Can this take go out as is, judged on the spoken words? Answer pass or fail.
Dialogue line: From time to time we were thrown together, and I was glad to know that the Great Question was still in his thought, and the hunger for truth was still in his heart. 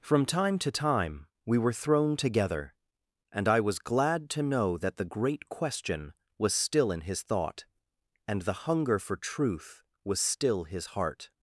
fail